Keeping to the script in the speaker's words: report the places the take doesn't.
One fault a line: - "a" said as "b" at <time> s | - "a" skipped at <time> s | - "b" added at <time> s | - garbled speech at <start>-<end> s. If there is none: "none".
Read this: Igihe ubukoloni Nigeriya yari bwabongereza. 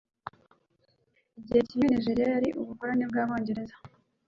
- "ubukoloni" said as "kimwe" at 1.7 s
- "ubukoloni" added at 2.6 s